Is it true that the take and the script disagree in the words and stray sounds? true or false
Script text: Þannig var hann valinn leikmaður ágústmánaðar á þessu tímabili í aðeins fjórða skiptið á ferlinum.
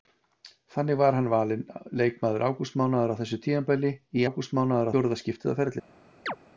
true